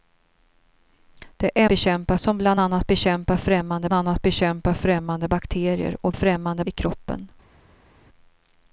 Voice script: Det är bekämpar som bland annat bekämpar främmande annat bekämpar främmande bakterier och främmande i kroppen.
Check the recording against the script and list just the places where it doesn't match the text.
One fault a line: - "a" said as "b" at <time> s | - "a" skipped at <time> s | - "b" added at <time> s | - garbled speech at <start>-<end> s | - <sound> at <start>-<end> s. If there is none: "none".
none